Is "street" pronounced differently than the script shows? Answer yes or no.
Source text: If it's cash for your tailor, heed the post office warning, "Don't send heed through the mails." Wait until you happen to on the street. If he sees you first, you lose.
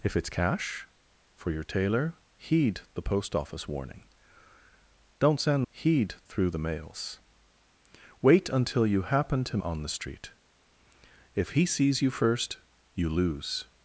no